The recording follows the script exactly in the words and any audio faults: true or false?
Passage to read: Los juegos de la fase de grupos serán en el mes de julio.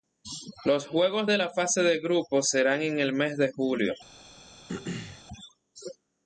false